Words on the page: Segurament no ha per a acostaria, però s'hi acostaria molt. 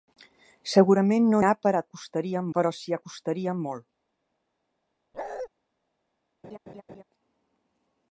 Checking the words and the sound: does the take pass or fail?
fail